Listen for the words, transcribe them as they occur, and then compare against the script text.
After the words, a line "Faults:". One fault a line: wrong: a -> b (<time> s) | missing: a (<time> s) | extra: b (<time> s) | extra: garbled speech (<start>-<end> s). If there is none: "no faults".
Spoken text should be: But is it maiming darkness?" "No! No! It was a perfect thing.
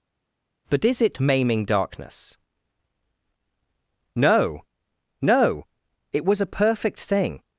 But is it maiming darkness?" "No! No! It was a perfect thing.
Faults:
no faults